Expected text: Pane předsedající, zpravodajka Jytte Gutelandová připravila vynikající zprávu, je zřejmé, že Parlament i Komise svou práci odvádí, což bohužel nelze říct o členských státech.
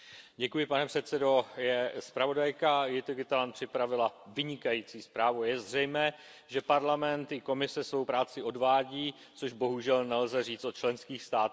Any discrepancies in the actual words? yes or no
no